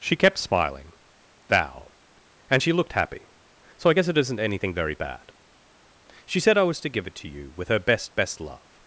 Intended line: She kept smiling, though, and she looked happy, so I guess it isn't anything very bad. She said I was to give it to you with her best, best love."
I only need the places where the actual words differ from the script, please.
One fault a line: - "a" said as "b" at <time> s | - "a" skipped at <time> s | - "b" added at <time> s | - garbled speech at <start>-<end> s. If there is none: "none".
- "though" said as "thou" at 1.5 s